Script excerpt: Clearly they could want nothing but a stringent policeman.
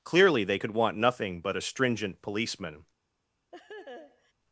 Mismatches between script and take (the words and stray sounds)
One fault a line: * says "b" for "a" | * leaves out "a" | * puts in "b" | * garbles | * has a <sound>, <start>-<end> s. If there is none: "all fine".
* has a laugh, 3.5-4.3 s